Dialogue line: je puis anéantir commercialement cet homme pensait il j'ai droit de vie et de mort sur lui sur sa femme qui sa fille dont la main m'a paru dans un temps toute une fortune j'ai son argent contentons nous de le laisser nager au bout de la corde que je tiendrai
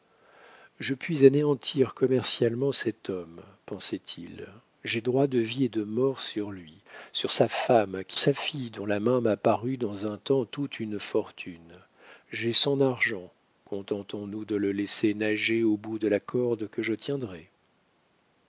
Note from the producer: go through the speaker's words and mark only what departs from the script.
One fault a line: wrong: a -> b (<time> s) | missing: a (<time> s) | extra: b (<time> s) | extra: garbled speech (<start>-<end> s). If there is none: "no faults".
no faults